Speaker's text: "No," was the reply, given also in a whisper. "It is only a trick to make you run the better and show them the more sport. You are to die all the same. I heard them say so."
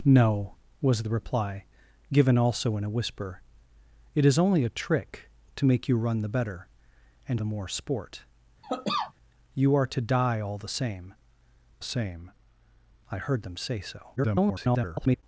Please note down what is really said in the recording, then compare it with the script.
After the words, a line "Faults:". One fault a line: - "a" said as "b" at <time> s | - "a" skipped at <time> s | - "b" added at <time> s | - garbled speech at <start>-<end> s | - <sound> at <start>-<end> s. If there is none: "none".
"No," was the reply, given also in a whisper. "It is only a trick to make you run the better and the more sport. You are to die all the same same. I heard them say so." [garbled]
Faults:
- "show them" skipped at 7.4 s
- cough at 8.6-9.1 s
- "same" added at 11.8 s
- garbled speech at 14.2-15.2 s